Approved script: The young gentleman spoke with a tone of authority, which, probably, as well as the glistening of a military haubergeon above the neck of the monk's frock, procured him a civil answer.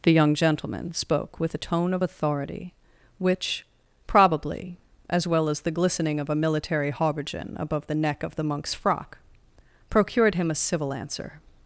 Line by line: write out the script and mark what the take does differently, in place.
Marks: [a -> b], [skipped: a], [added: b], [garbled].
The young gentleman spoke with a tone of authority, which, probably, as well as the glistening of a military haubergeon above the neck of the monk's frock, procured him a civil answer.